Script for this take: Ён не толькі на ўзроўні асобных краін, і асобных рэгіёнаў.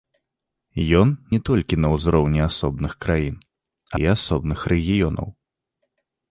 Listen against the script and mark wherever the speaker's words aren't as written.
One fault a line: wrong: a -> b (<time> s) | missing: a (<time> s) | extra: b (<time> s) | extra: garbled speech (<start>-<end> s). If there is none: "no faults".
no faults